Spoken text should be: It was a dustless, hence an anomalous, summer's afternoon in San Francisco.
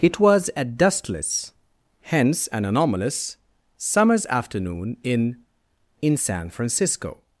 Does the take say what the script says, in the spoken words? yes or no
no